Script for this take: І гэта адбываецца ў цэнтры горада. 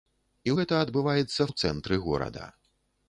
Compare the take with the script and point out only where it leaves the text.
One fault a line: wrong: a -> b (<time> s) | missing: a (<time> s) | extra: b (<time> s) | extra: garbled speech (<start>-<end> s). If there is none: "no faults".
no faults